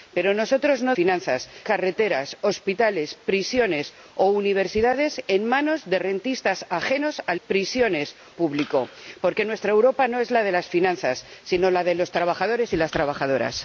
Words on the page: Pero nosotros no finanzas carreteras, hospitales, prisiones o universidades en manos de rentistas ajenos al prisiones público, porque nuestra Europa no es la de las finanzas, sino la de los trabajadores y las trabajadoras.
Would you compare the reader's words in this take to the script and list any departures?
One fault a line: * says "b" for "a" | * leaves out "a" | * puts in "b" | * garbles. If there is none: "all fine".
all fine